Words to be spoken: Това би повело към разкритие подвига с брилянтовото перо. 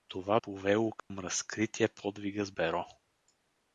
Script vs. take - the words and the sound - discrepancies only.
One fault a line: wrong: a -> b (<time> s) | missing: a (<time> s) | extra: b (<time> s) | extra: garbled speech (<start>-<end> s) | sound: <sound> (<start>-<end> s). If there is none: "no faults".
missing: би (0.4 s)
sound: dropout (1.0-1.1 s)
missing: брилянтовото (2.5 s)